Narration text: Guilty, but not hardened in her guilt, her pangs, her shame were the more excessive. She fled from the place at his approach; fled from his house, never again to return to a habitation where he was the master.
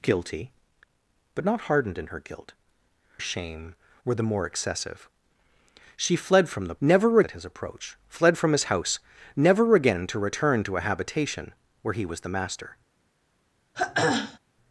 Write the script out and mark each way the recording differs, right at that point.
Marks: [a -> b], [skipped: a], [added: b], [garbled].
Guilty, but not hardened in her guilt, [skipped: her pangs, her] shame were the more excessive. She fled from the [place -> never] at his approach; fled from his house, never again to return to a habitation where he was the master.